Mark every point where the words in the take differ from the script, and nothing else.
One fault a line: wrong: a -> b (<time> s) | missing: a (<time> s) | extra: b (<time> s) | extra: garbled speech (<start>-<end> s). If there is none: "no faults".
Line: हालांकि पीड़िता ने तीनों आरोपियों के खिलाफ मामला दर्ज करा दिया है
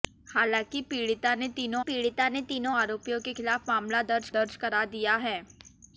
extra: पीड़िता ने तीनों (1.8 s)
extra: दर्ज (4.3 s)